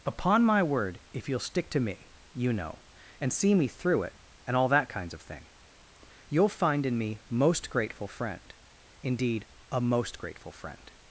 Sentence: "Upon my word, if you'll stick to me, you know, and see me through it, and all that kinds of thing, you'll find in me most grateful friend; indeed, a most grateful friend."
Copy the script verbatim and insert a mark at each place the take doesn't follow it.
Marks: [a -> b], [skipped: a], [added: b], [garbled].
"Upon my word, if you'll stick to me, you know, and see me through it, and all that kinds of thing, you'll find in me most grateful friend; indeed, a most grateful friend."